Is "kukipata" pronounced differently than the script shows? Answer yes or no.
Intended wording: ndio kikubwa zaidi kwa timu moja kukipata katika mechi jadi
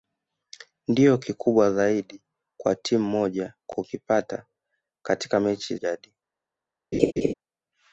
no